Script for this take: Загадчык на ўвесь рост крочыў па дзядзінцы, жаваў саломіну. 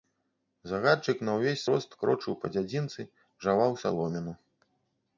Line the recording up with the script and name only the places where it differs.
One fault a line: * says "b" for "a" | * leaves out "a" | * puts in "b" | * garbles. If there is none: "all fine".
all fine